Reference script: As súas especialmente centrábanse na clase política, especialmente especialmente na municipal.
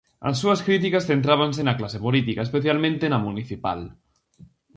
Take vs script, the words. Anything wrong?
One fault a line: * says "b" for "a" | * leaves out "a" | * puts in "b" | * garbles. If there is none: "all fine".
* says "críticas" for "especialmente"
* leaves out "especialmente"